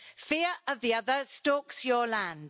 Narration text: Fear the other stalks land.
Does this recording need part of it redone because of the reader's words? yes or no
yes